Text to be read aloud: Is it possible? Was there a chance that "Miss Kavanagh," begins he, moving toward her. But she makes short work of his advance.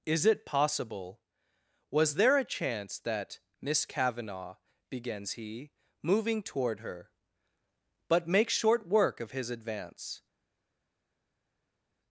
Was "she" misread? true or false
true